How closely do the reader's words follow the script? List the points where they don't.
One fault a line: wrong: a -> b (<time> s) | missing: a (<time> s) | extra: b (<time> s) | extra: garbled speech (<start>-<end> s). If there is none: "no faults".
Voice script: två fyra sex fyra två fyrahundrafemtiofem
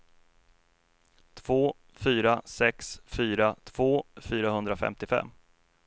no faults